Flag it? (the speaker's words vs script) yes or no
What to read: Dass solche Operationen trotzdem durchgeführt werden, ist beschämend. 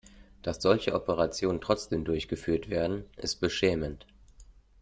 no